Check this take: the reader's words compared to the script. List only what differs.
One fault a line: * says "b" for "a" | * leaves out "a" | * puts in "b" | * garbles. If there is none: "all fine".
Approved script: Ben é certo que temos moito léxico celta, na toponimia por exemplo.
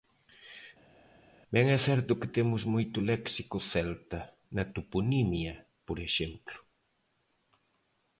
all fine